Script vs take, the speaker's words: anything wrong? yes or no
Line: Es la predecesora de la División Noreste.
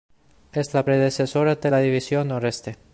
no